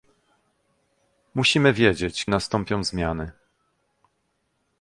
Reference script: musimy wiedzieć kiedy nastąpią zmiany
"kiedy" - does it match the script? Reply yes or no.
no